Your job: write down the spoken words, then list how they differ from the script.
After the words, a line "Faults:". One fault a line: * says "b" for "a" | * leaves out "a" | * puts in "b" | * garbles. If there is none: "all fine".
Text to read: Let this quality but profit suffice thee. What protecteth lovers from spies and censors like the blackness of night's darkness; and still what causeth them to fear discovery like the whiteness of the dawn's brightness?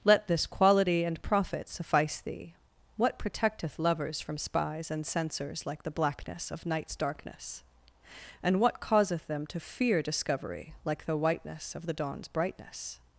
Let this quality and profit suffice thee. What protecteth lovers from spies and censors like the blackness of night's darkness; and what causeth them to fear discovery like the whiteness of the dawn's brightness?
Faults:
* says "and" for "but"
* leaves out "still"